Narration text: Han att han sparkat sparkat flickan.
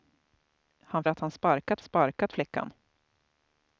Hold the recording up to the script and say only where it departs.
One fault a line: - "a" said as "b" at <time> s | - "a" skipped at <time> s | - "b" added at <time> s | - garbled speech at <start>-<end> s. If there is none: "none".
none